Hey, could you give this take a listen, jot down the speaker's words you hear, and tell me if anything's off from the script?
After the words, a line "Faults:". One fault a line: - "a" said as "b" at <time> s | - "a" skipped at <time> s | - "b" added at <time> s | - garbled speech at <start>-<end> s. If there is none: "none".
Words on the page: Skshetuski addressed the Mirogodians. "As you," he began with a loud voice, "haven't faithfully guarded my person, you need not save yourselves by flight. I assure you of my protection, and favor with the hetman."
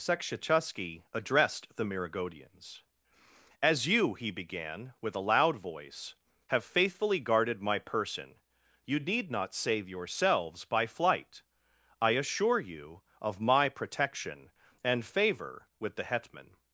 Skshetuski addressed the Mirogodians. "As you," he began with a loud voice, "have faithfully guarded my person, you need not save yourselves by flight. I assure you of my protection, and favor with the hetman."
Faults:
- "haven't" said as "have" at 6.5 s